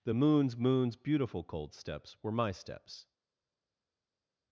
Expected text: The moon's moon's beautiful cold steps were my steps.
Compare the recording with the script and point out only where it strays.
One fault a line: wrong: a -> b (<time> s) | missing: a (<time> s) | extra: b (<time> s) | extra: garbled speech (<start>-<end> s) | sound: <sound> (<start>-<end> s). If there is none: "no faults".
no faults